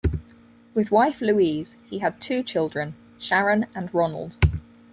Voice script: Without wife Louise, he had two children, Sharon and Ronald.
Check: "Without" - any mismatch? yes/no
yes